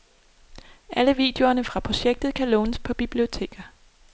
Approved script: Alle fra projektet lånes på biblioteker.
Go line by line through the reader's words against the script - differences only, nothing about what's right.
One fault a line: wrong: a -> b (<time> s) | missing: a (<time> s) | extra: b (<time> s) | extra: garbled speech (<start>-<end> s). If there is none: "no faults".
extra: videoerne (1.1 s)
extra: kan (2.3 s)